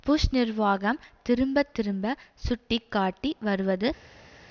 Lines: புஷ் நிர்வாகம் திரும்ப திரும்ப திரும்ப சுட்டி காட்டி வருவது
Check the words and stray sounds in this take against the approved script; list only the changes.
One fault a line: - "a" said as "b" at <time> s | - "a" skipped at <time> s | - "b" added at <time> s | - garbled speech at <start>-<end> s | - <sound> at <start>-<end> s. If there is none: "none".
- "திரும்ப" skipped at 2.1 s